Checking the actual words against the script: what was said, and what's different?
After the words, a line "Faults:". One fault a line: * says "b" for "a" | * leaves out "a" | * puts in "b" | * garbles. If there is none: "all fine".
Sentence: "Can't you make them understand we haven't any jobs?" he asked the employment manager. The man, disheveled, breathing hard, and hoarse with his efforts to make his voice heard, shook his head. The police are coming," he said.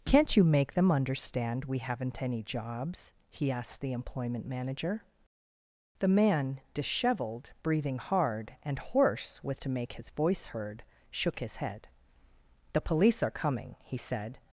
"Can't you make them understand we haven't any jobs?" he asked the employment manager. The man, disheveled, breathing hard, and hoarse with to make his voice heard, shook his head. The police are coming," he said.
Faults:
* leaves out "his efforts"